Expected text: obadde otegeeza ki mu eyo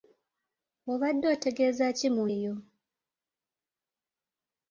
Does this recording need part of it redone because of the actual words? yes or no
no